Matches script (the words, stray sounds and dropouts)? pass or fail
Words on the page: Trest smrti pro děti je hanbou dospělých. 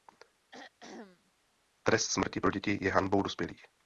fail